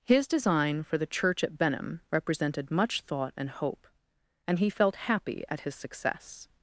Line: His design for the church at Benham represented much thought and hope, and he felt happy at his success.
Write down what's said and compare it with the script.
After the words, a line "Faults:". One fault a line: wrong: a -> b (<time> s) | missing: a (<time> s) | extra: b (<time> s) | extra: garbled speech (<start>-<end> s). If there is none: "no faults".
His design for the church at Benham represented much thought and hope, and he felt happy at his success.
Faults:
no faults